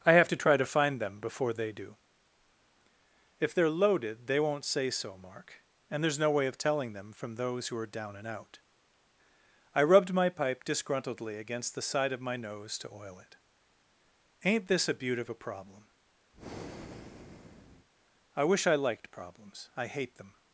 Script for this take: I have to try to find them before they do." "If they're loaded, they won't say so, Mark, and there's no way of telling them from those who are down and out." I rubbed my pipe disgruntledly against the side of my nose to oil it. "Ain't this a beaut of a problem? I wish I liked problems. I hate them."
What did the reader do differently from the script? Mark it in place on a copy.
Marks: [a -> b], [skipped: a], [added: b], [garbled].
I have to try to find them before they do." "If they're loaded, they won't say so, Mark, and there's no way of telling them from those who are down and out." I rubbed my pipe disgruntledly against the side of my nose to oil it. "Ain't this a beaut of a problem? I wish I liked problems. I hate them."